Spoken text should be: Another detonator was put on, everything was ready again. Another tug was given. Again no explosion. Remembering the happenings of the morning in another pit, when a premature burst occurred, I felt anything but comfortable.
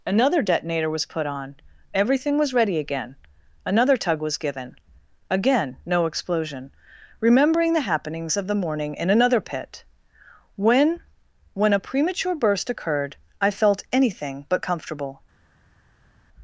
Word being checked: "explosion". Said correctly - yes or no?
yes